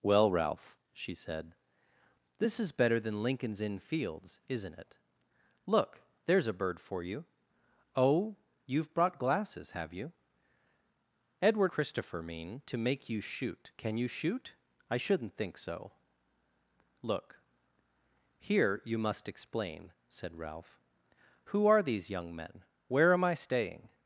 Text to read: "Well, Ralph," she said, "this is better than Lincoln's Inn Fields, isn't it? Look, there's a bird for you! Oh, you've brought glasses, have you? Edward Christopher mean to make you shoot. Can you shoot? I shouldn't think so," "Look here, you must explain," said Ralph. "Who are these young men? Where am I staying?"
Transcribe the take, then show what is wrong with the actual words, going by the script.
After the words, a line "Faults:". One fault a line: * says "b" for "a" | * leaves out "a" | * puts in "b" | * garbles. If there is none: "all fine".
"Well, Ralph," she said, "this is better than Lincoln's Inn Fields, isn't it? Look, there's a bird for you! Oh, you've brought glasses, have you? Edward Christopher mean to make you shoot. Can you shoot? I shouldn't think so," "Look here, you must explain," said Ralph. "Who are these young men? Where am I staying?"
Faults:
all fine